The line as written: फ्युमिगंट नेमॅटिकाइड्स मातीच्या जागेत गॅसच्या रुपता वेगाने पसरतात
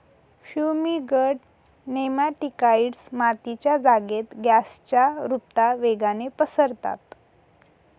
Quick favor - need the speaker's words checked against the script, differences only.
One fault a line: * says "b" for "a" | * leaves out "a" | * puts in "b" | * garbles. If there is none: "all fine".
all fine